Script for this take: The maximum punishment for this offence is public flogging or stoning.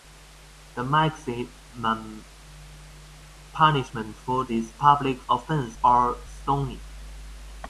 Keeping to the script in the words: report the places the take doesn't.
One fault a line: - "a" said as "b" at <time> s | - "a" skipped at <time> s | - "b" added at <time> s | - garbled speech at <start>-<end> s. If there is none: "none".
- "this offence" skipped at 4.5 s
- "flogging" said as "offence" at 5.3 s